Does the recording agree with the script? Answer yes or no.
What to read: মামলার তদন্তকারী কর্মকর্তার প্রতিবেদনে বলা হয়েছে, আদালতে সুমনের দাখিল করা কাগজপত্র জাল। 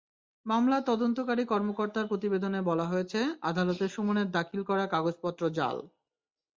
yes